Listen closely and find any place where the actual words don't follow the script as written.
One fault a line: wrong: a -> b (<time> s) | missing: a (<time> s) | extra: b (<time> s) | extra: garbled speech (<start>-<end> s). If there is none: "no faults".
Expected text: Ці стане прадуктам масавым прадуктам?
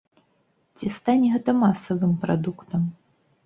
wrong: прадуктам -> гэта (1.4 s)